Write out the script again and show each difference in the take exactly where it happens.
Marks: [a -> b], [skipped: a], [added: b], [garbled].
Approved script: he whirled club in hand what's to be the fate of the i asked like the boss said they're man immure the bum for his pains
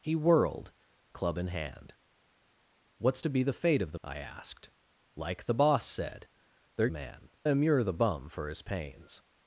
he whirled club in hand what's to be the fate of the i asked like the boss said they're man immure the bum for his pains